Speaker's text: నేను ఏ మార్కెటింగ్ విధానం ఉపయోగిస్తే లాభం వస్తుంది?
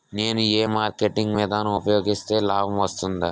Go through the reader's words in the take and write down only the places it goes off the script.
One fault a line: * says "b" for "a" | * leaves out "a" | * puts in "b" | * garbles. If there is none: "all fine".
all fine